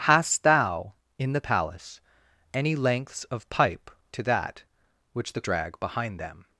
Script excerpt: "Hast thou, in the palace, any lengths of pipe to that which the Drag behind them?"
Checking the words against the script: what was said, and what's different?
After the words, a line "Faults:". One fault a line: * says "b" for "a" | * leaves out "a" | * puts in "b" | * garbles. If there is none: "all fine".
"Hast thou, in the palace, any lengths of pipe to that which the Drag behind them?"
Faults:
all fine